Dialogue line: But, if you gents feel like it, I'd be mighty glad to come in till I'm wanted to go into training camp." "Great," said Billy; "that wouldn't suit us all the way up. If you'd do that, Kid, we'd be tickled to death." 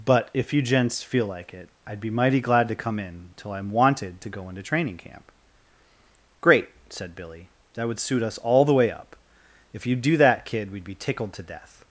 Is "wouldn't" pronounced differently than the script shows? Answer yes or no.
yes